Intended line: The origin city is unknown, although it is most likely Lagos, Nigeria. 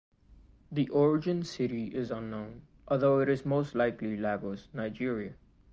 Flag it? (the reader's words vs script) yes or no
no